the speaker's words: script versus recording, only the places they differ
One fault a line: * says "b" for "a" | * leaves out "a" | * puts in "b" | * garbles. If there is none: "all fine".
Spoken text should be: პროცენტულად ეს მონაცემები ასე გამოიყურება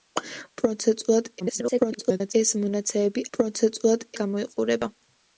* garbles
* says "პროცენტულად" for "ასე"